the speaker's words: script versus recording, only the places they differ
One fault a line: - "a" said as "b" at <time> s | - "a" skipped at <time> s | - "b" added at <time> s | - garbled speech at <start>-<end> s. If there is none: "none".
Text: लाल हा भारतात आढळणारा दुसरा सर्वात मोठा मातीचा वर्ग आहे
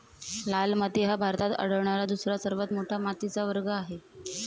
- "माती" added at 0.8 s